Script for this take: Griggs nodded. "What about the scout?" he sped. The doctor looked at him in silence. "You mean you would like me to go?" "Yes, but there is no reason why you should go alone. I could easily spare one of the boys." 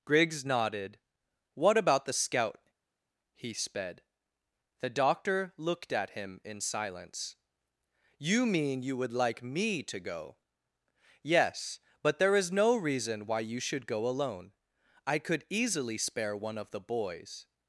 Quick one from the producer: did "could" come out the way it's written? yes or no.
yes